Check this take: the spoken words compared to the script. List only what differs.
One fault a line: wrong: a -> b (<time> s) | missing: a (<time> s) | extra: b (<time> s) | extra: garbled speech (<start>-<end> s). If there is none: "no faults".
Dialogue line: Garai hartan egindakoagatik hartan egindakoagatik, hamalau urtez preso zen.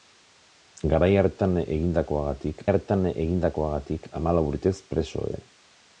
no faults